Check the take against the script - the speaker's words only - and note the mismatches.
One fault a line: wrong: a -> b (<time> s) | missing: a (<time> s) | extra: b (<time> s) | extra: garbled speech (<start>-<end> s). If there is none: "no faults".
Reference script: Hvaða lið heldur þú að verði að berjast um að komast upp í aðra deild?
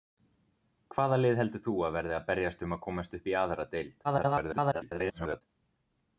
extra: garbled speech (4.0-5.4 s)